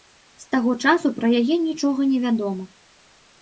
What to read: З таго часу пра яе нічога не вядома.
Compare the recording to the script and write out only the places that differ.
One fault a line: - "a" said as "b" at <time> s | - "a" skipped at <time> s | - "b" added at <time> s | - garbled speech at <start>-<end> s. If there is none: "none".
none